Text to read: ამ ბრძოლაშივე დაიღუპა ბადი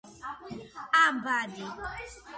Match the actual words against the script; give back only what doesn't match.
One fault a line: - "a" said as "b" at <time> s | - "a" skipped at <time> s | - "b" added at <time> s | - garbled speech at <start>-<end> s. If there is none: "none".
- "ბრძოლაშივე დაიღუპა" skipped at 1.2 s